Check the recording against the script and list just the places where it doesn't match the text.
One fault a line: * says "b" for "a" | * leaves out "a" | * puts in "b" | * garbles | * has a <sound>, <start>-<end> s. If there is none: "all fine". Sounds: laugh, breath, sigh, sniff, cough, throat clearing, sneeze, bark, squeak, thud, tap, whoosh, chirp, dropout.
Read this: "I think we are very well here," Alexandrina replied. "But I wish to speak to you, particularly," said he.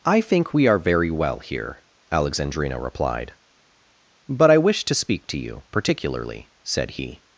all fine